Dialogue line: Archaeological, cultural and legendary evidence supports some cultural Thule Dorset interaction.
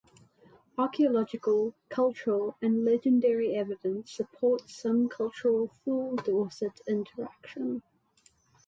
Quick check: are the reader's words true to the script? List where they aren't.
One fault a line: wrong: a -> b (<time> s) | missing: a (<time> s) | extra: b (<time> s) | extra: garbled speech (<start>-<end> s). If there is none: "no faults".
no faults